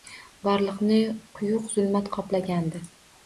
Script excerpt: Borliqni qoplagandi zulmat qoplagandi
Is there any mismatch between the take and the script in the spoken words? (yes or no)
yes